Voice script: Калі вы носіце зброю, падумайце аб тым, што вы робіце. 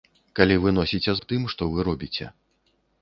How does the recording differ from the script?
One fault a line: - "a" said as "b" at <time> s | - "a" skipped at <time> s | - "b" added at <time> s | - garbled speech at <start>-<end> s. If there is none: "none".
- "зброю падумайце" skipped at 1.1 s